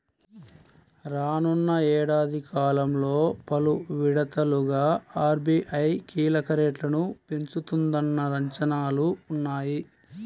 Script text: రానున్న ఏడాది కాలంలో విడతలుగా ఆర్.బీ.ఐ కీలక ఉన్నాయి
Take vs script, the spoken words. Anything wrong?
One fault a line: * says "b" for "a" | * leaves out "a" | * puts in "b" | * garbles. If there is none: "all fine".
* puts in "పలు"
* puts in "రేట్లను పెంచుతుందన్న అంచనాలు"